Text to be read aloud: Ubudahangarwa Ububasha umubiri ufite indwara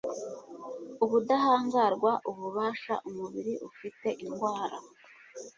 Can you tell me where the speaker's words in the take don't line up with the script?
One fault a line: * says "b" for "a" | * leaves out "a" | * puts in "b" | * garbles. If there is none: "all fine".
all fine